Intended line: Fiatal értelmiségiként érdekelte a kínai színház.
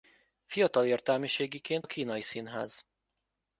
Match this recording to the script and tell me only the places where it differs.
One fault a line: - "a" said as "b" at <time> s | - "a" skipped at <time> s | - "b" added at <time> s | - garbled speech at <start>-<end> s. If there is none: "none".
- "érdekelte" skipped at 1.9 s